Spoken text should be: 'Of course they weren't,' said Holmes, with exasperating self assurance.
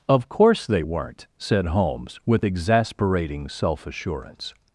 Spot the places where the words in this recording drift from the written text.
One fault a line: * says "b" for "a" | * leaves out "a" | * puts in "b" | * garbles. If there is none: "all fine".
all fine